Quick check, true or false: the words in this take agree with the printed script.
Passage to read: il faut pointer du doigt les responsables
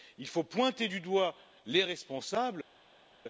true